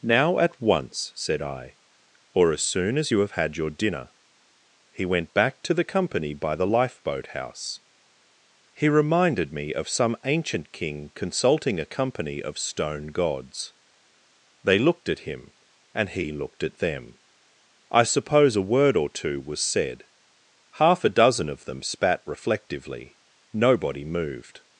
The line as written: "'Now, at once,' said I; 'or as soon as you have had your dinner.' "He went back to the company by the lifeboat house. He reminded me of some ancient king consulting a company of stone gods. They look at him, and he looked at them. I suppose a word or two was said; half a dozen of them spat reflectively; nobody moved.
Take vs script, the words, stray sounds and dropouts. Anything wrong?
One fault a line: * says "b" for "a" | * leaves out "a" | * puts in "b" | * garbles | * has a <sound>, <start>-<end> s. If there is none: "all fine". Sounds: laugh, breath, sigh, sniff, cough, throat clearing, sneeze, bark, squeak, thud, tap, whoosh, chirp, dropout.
* says "looked" for "look"